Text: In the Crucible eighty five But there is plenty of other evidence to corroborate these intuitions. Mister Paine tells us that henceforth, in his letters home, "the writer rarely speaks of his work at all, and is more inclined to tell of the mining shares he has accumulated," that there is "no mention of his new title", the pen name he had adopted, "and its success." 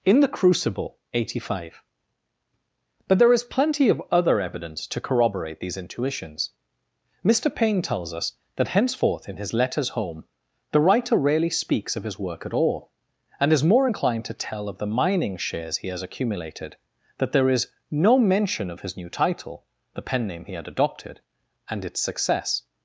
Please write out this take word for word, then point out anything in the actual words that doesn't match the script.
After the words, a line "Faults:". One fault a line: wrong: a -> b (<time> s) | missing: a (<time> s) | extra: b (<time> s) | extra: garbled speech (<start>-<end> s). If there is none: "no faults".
In the Crucible eighty five But there is plenty of other evidence to corroborate these intuitions. Mister Paine tells us that henceforth, in his letters home, "the writer rarely speaks of his work at all, and is more inclined to tell of the mining shares he has accumulated," that there is "no mention of his new title", the pen name he had adopted, "and its success."
Faults:
no faults